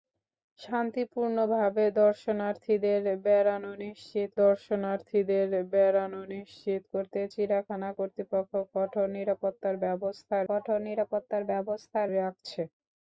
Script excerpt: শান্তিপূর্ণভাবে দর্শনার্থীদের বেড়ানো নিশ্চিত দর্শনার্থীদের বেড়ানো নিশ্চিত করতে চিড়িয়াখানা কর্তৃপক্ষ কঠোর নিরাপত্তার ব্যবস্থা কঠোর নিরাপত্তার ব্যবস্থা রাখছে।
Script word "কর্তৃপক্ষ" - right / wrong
right